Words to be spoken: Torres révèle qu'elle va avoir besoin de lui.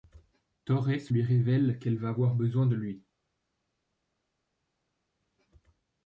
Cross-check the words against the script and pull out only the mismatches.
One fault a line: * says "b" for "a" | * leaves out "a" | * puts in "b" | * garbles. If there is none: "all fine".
* puts in "lui"